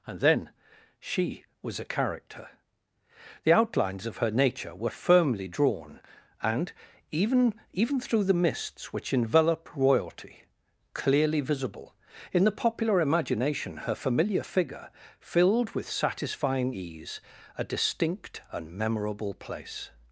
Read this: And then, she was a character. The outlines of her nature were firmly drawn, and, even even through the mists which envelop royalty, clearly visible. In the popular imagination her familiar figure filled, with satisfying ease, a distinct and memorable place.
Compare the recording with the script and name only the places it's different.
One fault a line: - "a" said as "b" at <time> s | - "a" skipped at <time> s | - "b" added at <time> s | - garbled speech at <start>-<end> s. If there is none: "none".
none